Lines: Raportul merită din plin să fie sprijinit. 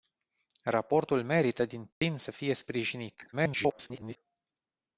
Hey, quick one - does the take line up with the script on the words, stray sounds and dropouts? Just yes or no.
no